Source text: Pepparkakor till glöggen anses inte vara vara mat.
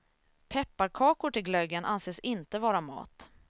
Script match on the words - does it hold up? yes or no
no